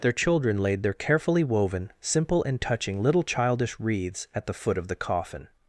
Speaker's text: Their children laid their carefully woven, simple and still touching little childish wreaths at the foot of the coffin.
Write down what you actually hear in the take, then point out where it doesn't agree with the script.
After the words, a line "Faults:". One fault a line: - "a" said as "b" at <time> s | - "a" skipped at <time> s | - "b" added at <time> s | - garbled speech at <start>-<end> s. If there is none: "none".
Their children laid their carefully woven, simple and touching little childish wreaths at the foot of the coffin.
Faults:
- "still" skipped at 2.6 s